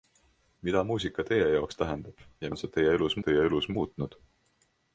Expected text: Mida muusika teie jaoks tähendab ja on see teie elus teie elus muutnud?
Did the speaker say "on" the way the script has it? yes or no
yes